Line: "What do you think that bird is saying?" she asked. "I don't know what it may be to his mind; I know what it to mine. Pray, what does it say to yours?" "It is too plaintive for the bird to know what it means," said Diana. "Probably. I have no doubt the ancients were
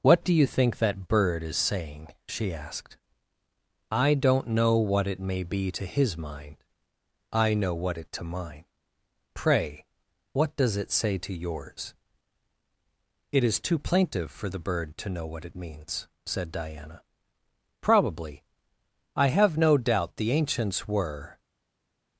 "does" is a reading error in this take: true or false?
false